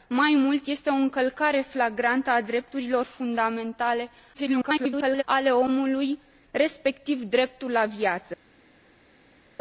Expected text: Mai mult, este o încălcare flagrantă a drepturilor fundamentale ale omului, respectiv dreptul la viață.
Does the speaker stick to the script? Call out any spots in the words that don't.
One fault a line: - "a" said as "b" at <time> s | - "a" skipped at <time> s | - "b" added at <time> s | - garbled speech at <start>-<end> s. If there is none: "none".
- garbled speech at 4.3-5.2 s